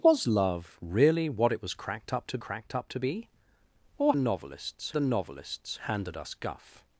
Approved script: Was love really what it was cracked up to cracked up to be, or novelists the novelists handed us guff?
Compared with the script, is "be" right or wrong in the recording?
right